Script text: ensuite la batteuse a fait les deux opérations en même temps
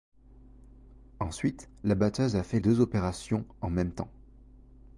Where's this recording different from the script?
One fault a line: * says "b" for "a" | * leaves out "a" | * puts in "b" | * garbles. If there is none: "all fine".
* leaves out "les"